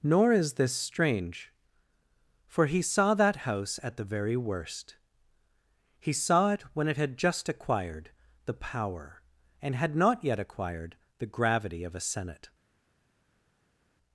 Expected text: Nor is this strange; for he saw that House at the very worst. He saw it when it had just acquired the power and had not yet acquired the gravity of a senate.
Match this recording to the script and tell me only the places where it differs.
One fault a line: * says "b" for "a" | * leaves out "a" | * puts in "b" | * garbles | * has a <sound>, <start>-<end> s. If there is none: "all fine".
all fine